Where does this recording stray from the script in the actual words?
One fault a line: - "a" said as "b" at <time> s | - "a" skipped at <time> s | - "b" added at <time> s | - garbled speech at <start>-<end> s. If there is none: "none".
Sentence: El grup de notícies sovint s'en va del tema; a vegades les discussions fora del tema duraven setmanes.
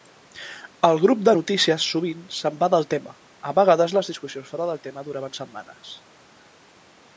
none